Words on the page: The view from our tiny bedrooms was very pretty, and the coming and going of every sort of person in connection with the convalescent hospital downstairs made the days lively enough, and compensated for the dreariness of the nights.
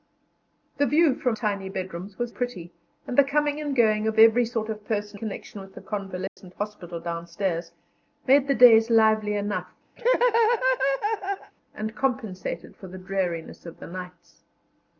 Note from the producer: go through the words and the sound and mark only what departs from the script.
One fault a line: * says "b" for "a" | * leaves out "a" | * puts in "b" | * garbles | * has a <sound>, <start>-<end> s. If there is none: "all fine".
* leaves out "our"
* leaves out "very"
* leaves out "in"
* has a dropout, 6.3-6.4 s
* has a laugh, 10.0-11.5 s